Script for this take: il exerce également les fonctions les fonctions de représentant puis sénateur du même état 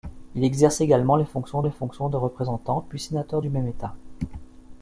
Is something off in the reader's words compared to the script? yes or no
no